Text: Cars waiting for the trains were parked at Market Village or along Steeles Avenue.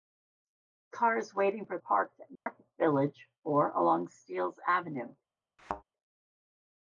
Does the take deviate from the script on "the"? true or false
true